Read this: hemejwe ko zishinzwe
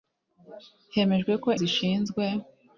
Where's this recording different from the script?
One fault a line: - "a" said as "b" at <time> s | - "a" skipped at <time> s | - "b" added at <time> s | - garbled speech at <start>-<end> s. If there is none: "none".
none